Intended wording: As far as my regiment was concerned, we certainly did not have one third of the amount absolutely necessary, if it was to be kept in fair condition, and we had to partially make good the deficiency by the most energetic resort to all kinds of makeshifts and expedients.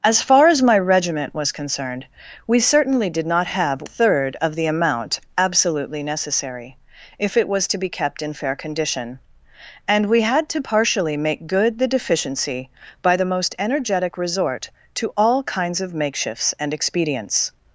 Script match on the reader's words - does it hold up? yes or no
no